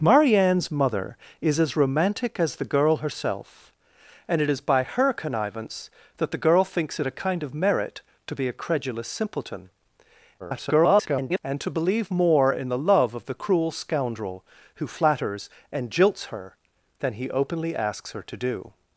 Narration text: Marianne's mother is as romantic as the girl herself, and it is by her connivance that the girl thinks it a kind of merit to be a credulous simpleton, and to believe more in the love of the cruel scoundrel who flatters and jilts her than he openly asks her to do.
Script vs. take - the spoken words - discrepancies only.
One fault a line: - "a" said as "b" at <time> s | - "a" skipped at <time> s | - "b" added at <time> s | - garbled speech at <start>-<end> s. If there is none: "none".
- garbled speech at 10.4-11.4 s